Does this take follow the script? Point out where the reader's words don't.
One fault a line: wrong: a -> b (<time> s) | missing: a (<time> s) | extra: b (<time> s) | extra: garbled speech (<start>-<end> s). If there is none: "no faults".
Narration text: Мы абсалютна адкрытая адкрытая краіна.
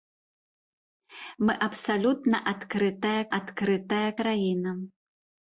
no faults